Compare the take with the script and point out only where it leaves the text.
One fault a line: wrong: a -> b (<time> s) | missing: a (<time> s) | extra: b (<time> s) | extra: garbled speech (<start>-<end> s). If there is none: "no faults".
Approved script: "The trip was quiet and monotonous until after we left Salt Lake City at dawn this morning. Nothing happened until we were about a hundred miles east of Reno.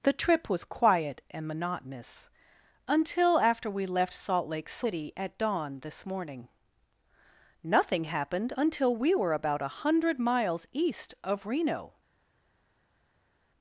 no faults